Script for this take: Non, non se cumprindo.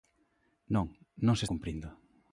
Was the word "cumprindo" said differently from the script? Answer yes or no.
no